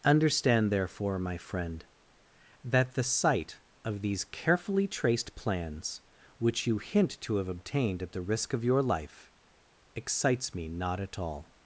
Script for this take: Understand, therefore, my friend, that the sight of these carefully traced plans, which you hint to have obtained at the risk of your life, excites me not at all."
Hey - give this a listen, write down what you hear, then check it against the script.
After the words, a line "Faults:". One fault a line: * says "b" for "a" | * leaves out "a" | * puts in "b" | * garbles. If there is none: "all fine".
Understand, therefore, my friend, that the sight of these carefully traced plans, which you hint to have obtained at the risk of your life, excites me not at all."
Faults:
all fine